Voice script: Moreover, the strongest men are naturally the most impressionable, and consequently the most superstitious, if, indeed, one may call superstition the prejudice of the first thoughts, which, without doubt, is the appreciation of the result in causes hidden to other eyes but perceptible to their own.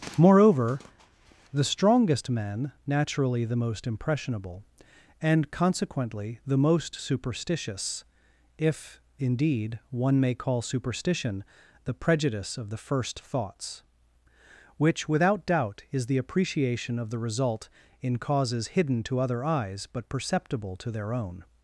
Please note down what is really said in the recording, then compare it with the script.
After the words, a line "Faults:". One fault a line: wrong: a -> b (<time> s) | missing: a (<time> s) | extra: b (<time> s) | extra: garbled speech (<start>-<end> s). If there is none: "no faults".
Moreover, the strongest men naturally the most impressionable, and consequently the most superstitious, if, indeed, one may call superstition the prejudice of the first thoughts, which, without doubt, is the appreciation of the result in causes hidden to other eyes but perceptible to their own.
Faults:
missing: are (2.7 s)